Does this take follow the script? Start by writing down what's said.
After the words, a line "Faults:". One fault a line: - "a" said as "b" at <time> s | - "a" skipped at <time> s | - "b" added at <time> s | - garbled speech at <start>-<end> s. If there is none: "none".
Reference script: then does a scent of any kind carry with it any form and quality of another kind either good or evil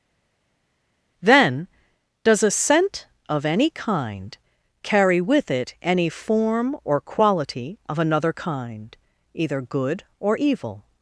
then does a scent of any kind carry with it any form or quality of another kind either good or evil
Faults:
- "and" said as "or" at 6.8 s